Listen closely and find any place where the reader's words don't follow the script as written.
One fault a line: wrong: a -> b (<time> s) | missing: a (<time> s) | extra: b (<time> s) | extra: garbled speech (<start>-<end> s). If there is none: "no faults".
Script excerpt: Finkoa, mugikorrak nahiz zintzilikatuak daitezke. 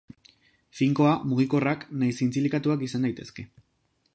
extra: izan (2.9 s)